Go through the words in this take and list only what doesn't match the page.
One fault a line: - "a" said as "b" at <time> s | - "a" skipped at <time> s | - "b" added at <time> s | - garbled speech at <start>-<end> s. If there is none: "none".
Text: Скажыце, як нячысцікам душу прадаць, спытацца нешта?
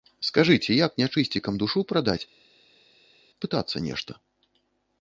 none